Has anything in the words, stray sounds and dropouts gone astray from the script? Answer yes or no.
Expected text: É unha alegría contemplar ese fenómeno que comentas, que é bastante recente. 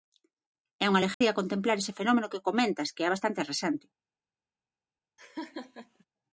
yes